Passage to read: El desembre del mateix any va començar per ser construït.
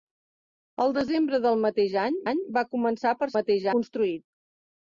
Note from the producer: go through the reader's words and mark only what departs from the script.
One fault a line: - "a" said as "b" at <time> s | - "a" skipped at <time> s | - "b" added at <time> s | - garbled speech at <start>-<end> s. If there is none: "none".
- "any" added at 2.3 s
- "ser" said as "mateix" at 3.4 s